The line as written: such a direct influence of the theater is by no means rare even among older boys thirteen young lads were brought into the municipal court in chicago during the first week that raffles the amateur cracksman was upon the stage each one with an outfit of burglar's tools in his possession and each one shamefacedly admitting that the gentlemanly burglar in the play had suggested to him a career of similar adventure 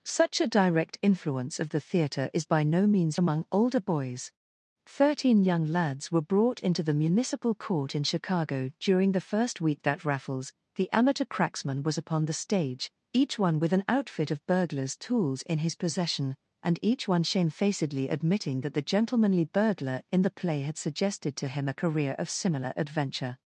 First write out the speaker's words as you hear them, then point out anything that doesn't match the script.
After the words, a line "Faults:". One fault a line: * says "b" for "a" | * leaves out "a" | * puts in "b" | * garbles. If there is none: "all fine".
such a direct influence of the theater is by no means among older boys thirteen young lads were brought into the municipal court in chicago during the first week that raffles the amateur cracksman was upon the stage each one with an outfit of burglar's tools in his possession and each one shamefacedly admitting that the gentlemanly burglar in the play had suggested to him a career of similar adventure
Faults:
* leaves out "rare even"